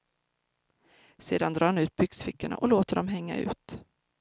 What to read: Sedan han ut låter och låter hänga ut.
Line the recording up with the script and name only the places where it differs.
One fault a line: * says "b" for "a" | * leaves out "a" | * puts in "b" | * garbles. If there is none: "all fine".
* puts in "drar"
* says "byxfickorna" for "låter"
* puts in "dem"